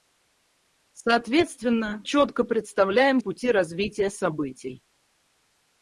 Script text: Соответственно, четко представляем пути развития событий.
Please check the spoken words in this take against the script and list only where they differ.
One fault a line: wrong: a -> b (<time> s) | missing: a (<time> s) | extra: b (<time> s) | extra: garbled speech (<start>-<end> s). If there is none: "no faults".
no faults